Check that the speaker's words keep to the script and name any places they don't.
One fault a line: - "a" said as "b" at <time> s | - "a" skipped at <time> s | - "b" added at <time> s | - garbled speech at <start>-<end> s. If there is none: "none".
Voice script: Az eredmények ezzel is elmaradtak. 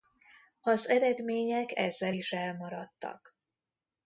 none